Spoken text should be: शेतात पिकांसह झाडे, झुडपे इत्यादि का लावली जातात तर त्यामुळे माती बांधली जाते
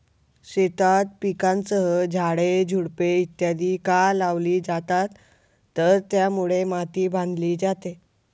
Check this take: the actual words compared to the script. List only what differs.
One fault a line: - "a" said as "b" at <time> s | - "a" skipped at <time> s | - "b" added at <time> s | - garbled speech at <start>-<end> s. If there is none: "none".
none